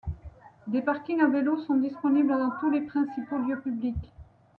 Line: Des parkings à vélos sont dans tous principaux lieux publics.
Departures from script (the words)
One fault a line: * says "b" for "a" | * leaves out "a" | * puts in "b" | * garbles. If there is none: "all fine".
* puts in "disponibles"
* puts in "les"